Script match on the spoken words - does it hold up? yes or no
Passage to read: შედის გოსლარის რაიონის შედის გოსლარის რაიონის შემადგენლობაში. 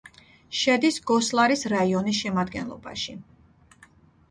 no